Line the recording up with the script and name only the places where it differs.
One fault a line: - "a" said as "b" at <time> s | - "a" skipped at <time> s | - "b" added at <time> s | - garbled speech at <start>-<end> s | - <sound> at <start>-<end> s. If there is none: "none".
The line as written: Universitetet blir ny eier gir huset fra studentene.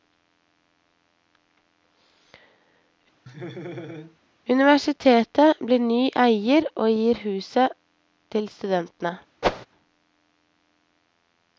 - laugh at 3.3-4.2 s
- "og" added at 6.7 s
- "fra" said as "til" at 8.3 s
- whoosh at 9.4-9.7 s